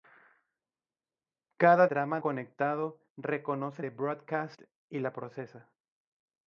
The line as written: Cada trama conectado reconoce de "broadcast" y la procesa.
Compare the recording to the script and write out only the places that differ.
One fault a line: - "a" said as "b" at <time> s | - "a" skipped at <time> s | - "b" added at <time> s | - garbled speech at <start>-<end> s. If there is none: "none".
none